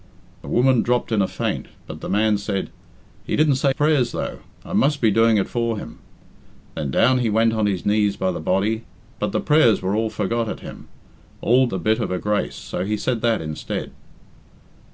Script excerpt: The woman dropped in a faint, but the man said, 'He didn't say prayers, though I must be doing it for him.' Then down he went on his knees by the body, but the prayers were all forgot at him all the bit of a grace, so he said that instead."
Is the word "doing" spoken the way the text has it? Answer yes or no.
yes